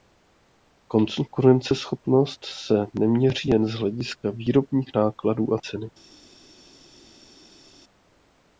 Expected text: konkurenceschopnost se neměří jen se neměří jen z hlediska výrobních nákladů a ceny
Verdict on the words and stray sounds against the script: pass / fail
fail